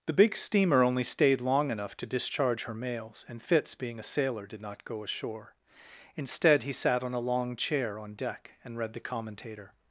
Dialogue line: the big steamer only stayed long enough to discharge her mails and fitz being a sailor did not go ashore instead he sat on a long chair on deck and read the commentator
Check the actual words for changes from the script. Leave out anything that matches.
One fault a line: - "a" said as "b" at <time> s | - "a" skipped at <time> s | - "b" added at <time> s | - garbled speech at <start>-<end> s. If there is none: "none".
none